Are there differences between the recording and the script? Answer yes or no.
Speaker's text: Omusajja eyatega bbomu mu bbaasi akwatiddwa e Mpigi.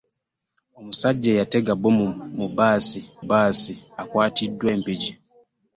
yes